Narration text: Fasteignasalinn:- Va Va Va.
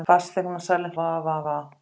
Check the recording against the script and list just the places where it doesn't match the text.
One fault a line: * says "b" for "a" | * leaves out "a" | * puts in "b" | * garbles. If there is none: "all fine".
all fine